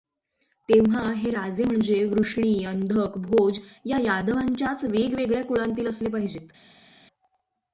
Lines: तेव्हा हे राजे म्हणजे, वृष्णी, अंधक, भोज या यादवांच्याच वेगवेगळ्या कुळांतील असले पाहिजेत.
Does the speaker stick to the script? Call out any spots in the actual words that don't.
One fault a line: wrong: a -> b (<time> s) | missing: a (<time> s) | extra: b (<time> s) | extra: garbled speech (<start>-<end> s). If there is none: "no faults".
no faults